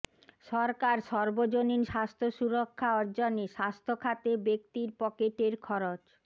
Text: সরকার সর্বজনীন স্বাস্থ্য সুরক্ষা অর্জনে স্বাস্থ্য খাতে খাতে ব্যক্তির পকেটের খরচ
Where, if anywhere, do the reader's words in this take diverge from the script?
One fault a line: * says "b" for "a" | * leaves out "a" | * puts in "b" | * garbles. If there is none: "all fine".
* leaves out "খাতে"